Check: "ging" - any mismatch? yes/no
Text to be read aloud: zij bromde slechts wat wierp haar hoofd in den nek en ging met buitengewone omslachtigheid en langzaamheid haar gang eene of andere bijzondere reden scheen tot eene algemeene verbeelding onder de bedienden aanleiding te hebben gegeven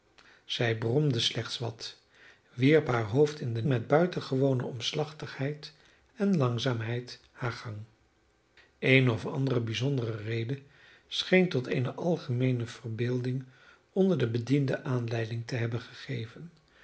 yes